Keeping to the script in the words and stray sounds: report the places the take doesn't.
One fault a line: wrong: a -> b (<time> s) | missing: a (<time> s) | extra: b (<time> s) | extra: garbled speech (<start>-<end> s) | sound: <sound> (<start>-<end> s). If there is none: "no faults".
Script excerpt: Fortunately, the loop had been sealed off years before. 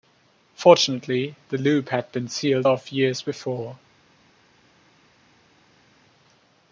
no faults